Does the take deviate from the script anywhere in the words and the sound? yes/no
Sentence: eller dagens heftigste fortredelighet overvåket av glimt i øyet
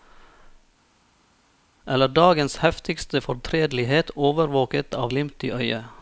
no